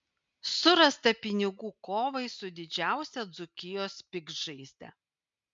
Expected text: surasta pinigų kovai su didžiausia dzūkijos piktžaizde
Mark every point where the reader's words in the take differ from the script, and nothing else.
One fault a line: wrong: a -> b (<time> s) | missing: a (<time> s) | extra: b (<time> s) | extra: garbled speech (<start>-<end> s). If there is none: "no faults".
no faults